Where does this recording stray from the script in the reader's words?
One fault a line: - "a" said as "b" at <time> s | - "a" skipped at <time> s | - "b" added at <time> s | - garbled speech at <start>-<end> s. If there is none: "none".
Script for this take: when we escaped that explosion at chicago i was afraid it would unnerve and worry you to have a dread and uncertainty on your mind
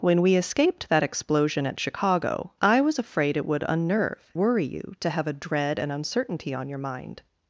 - "and" skipped at 4.3 s